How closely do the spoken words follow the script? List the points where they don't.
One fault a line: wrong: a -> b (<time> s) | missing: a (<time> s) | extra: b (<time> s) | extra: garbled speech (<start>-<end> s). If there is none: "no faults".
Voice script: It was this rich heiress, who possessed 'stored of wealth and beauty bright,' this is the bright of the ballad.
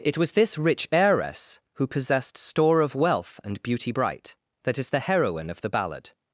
wrong: stored -> store (2.4 s)
wrong: this -> that (4.6 s)
wrong: bright -> heroine (5.0 s)